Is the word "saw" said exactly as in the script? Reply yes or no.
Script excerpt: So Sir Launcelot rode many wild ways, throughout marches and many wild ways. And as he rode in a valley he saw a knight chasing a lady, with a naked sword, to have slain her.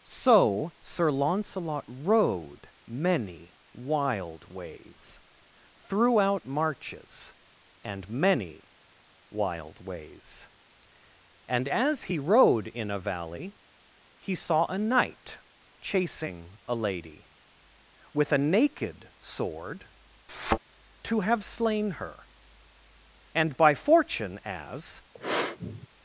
yes